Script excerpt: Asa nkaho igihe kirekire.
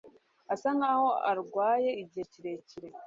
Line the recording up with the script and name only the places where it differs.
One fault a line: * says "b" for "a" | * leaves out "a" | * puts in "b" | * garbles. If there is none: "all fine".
* puts in "arwaye"